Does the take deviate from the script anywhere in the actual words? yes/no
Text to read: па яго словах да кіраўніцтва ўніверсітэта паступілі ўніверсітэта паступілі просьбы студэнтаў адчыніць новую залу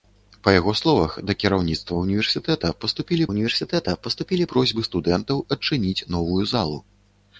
no